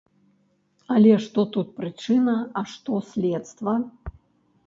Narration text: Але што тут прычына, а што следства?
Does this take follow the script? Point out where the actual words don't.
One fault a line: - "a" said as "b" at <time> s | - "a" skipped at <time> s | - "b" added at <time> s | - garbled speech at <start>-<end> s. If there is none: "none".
none